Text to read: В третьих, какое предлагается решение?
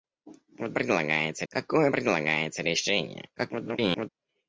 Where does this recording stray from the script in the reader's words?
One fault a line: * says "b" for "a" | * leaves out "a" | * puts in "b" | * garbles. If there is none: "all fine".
* says "предлагается" for "третьих"
* garbles